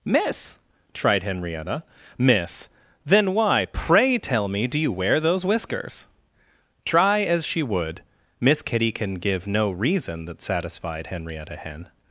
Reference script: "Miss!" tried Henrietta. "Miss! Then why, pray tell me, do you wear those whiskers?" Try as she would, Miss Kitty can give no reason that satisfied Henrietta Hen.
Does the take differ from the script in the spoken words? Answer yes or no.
no